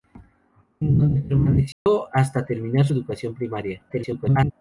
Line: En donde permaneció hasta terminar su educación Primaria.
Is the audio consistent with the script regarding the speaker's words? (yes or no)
no